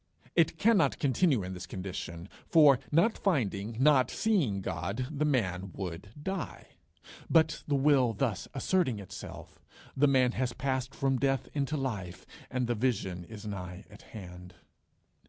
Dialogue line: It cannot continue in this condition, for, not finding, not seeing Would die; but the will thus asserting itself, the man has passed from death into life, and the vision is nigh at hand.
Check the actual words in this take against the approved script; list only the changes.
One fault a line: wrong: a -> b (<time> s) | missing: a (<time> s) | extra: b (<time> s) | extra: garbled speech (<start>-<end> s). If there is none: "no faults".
extra: God the man (4.6 s)